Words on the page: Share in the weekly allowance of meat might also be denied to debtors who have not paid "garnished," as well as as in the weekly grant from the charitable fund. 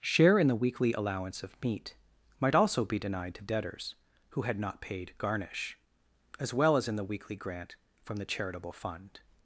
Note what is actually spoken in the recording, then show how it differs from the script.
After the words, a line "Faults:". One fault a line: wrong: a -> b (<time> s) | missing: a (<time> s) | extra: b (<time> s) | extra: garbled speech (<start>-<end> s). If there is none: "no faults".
Share in the weekly allowance of meat might also be denied to debtors who had not paid "garnish," as well as in the weekly grant from the charitable fund.
Faults:
wrong: have -> had (4.4 s)
wrong: garnished -> garnish (5.2 s)
missing: as (6.9 s)